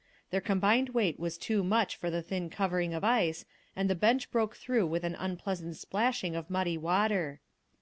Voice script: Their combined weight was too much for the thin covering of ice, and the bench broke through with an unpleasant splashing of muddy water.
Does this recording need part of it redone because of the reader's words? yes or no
no